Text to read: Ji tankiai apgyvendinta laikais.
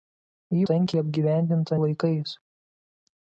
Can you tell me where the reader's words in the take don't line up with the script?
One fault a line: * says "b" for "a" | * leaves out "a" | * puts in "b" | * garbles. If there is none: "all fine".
all fine